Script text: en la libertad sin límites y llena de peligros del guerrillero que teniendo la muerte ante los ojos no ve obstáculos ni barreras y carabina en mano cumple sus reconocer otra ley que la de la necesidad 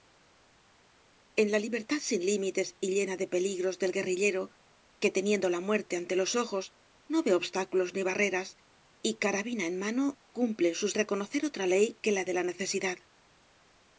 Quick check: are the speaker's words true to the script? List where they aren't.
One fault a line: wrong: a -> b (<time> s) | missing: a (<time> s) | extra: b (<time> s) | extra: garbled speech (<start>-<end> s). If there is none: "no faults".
no faults